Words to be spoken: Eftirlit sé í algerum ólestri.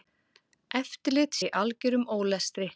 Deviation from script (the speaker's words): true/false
true